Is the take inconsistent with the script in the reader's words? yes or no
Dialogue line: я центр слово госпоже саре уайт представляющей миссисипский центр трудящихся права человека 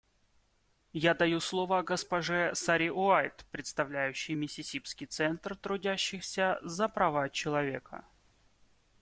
yes